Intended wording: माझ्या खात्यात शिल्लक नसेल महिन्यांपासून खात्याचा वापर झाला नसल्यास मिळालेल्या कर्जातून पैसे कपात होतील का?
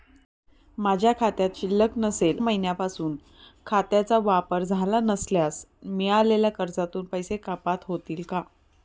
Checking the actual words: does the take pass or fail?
pass